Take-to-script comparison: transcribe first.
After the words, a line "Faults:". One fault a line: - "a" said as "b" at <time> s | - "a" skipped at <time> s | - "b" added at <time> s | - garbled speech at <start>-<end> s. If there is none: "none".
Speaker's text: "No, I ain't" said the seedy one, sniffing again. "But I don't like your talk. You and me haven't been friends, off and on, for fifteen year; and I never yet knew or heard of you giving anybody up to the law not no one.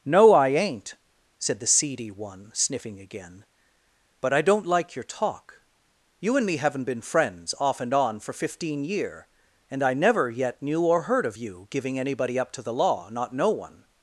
"No, I ain't" said the seedy one, sniffing again. "But I don't like your talk. You and me haven't been friends, off and on, for fifteen year; and I never yet knew or heard of you giving anybody up to the law not no one.
Faults:
none